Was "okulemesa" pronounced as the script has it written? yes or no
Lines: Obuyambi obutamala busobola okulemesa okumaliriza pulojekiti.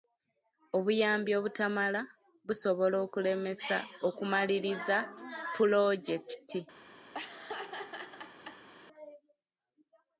yes